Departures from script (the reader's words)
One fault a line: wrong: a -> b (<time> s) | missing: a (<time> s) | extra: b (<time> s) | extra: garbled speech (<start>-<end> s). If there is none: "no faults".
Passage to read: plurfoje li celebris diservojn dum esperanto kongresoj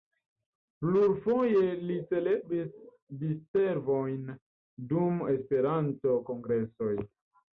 no faults